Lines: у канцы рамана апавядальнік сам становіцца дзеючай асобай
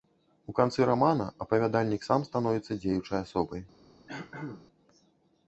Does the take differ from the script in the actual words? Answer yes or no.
no